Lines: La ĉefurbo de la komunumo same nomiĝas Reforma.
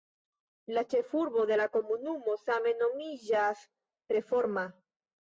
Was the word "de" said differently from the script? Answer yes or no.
no